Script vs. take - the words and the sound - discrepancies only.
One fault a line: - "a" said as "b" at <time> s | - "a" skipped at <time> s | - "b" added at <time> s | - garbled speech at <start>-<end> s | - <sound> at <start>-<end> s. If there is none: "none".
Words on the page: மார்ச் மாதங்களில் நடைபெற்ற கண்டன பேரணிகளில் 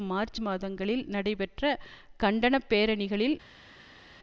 none